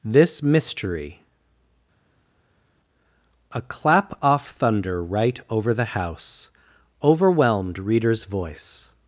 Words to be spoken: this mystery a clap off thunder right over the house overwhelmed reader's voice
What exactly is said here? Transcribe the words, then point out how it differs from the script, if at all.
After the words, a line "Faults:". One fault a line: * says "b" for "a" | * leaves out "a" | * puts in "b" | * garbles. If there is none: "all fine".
this mystery a clap off thunder right over the house overwhelmed reader's voice
Faults:
all fine